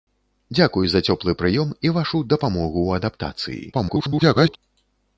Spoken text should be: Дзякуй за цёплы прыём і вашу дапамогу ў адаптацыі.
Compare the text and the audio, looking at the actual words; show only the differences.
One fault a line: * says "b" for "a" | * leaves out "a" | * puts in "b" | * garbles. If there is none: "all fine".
* garbles